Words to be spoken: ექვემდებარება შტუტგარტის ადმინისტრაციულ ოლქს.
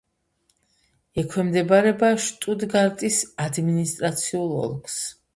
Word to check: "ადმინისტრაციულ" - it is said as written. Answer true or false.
true